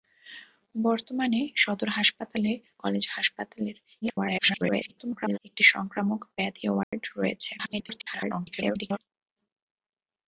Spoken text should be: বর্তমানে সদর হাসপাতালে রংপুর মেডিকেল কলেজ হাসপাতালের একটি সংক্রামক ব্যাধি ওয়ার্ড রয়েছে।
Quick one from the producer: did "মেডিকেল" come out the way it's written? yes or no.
no